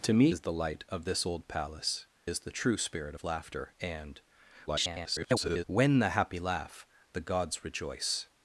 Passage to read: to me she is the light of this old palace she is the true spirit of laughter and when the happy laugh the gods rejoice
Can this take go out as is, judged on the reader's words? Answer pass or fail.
fail